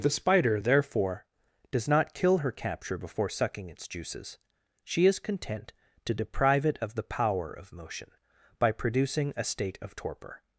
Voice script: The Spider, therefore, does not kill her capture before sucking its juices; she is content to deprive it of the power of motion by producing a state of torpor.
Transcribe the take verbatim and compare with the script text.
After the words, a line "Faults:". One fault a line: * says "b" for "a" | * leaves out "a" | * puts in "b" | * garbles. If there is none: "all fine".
The Spider, therefore, does not kill her capture before sucking its juices; she is content to deprive it of the power of motion by producing a state of torpor.
Faults:
all fine